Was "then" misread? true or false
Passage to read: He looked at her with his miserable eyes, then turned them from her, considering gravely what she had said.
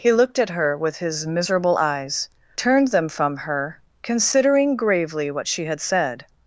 true